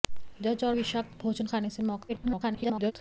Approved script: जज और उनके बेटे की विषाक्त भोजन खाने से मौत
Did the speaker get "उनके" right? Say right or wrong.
wrong